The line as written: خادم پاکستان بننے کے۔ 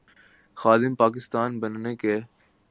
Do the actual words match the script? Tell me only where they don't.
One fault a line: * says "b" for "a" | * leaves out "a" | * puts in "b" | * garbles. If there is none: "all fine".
all fine